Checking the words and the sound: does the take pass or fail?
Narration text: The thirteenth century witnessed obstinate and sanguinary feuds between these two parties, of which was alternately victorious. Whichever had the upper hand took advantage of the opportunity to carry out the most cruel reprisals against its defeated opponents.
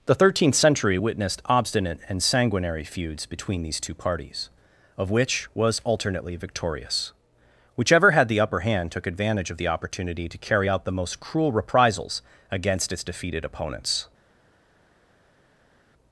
pass